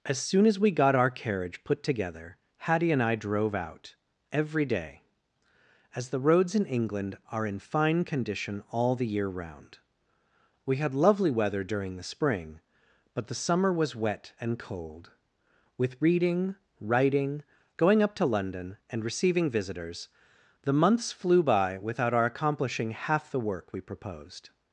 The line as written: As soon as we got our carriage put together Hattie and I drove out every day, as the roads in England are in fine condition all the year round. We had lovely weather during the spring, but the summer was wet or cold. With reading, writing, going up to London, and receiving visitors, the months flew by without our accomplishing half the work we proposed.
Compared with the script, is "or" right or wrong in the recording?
wrong